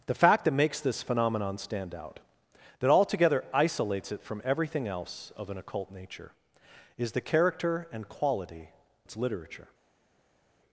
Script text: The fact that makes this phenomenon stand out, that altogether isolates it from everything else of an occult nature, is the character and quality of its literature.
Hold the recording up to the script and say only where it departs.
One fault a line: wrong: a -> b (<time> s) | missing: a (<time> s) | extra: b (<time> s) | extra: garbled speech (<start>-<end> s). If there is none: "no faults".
missing: of (8.7 s)